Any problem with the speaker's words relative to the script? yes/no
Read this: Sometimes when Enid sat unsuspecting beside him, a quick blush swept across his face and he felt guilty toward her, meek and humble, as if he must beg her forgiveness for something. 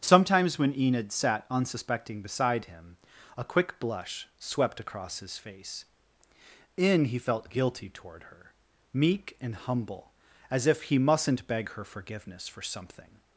yes